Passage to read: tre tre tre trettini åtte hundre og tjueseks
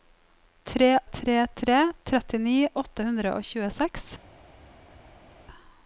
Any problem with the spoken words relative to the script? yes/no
no